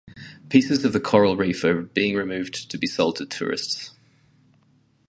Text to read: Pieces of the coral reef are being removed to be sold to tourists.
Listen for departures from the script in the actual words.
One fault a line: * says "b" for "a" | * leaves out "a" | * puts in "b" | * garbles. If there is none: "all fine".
all fine